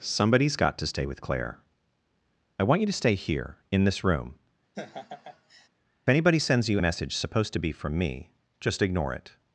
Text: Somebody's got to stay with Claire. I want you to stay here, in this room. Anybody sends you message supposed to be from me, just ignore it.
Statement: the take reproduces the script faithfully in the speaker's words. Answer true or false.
true